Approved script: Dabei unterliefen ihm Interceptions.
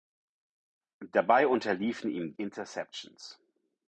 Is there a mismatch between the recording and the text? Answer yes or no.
no